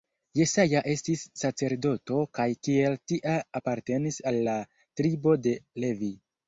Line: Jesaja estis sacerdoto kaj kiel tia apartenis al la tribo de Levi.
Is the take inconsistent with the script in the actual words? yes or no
no